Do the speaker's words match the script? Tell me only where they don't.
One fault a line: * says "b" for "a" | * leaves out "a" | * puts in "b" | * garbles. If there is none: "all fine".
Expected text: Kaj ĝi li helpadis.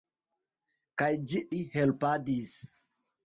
all fine